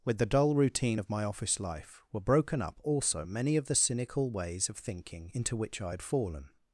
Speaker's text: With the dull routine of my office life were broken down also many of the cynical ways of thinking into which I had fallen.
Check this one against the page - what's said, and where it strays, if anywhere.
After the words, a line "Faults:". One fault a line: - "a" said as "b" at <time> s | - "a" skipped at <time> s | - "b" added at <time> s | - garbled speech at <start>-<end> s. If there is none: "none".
With the dull routine of my office life were broken up also many of the cynical ways of thinking into which I had fallen.
Faults:
- "down" said as "up" at 2.6 s